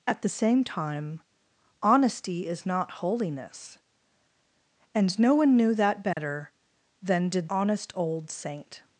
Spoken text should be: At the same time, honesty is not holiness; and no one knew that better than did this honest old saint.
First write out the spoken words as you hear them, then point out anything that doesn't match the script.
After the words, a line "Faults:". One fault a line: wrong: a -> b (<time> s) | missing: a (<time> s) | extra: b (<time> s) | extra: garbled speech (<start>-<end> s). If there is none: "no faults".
At the same time, honesty is not holiness; and no one knew that better than did honest old saint.
Faults:
missing: this (7.5 s)